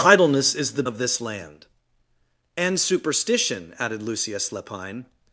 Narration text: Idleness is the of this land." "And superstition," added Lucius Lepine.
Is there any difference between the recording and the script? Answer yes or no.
no